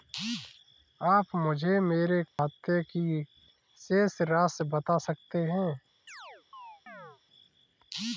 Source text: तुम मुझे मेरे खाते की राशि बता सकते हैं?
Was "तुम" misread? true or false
true